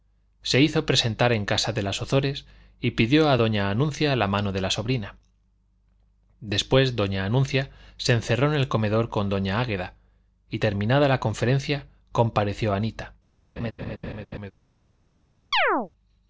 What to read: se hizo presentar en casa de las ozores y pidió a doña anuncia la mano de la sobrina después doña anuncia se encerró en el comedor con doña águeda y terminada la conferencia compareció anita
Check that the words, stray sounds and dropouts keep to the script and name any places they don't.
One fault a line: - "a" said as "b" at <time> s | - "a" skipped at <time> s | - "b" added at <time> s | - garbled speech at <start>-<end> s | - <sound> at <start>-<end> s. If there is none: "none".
- laugh at 13.6-14.5 s
- chirp at 15.5-15.9 s